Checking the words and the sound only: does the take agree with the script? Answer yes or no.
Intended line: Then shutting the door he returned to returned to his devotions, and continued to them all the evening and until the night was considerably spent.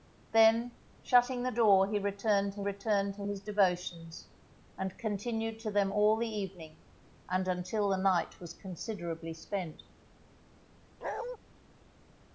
no